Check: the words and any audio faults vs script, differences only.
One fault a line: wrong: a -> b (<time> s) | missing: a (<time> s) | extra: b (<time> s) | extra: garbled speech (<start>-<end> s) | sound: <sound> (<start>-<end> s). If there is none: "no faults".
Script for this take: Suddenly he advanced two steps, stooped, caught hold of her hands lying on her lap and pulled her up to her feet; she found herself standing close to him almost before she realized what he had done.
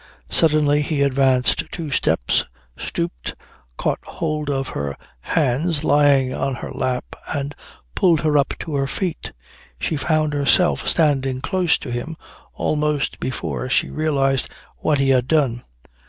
no faults